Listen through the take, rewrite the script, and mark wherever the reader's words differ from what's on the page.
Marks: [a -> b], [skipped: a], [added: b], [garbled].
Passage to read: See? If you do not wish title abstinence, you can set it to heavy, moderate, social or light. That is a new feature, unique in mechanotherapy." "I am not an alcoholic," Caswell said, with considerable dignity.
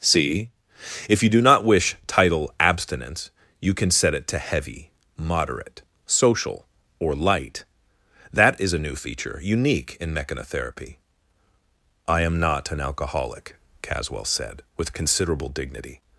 See? If you do not wish title abstinence, you can set it to heavy, moderate, social or light. That is a new feature, unique in mechanotherapy." "I am not an alcoholic," Caswell said, with considerable dignity.